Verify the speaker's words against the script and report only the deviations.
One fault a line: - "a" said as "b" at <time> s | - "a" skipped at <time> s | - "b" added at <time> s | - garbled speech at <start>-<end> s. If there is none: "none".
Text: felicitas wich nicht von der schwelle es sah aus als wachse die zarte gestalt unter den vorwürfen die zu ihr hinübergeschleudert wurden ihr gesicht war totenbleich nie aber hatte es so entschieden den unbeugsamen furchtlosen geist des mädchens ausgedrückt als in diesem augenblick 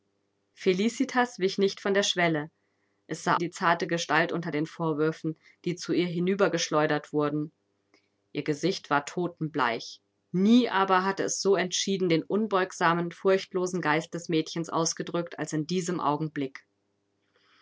- "aus als wachse" skipped at 3.4 s